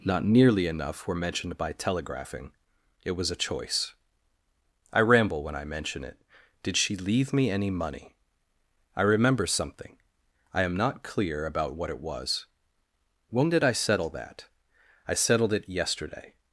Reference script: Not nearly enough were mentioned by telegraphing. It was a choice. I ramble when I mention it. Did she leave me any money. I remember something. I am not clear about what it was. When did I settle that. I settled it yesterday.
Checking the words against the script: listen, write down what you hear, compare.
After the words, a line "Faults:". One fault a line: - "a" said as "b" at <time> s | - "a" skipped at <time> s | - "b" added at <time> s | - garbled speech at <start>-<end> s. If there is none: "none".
Not nearly enough were mentioned by telegraphing. It was a choice. I ramble when I mention it. Did she leave me any money. I remember something. I am not clear about what it was. When did I settle that. I settled it yesterday.
Faults:
none